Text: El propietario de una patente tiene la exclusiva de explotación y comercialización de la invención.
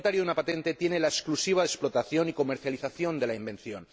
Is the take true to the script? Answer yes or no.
yes